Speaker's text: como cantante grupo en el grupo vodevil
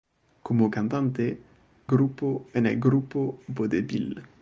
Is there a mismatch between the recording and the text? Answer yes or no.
no